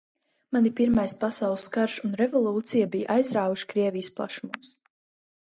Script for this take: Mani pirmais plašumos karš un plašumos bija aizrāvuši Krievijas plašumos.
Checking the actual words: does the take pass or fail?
fail